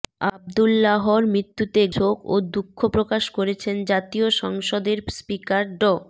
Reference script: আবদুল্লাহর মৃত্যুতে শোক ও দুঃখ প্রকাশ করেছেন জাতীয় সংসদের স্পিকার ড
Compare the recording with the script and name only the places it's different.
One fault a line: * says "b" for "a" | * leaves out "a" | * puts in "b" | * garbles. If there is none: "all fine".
all fine